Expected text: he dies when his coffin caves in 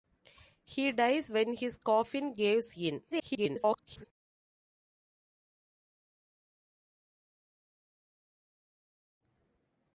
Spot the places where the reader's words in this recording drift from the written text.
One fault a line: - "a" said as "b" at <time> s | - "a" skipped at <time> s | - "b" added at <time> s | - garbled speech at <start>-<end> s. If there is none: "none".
- garbled speech at 3.1-4.0 s